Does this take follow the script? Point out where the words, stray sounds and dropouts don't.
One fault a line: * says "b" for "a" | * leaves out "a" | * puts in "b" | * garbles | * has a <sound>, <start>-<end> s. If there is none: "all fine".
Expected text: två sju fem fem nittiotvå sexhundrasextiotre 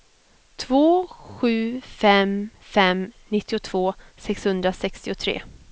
all fine